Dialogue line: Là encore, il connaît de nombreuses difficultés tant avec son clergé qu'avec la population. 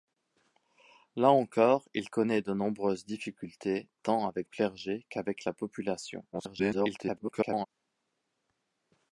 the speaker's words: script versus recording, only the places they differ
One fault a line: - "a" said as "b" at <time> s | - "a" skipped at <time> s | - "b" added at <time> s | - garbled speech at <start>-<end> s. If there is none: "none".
- "son" skipped at 4.5 s
- garbled speech at 6.3-7.7 s